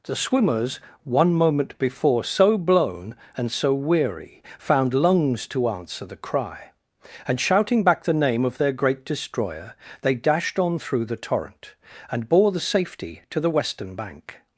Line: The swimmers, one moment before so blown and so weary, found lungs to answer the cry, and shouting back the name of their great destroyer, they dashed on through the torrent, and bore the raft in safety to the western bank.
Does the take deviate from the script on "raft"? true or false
true